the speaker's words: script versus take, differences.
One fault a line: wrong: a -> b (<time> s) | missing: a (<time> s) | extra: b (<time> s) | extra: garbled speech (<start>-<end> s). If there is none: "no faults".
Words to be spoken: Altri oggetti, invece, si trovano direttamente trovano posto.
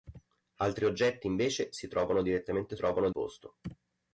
no faults